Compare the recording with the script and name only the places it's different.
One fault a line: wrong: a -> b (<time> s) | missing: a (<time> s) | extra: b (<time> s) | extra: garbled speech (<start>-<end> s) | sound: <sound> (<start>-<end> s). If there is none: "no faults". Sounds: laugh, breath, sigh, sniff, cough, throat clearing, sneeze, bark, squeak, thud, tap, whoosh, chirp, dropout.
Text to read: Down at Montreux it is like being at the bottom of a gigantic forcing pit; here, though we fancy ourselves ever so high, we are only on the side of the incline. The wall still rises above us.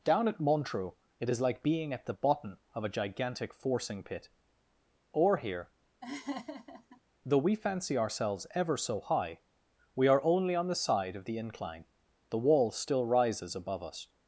extra: or (5.1 s)
sound: laugh (6.0-7.0 s)